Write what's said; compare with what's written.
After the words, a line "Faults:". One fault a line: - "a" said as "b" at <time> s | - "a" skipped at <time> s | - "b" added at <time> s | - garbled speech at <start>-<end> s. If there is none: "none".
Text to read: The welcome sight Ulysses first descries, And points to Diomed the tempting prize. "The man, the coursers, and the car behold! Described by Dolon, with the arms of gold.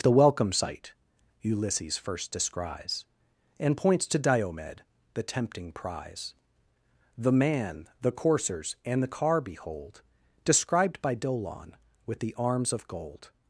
The welcome sight Ulysses first descries, And points to Diomed the tempting prize. "The man, the coursers, and the car behold! Described by Dolon, with the arms of gold.
Faults:
none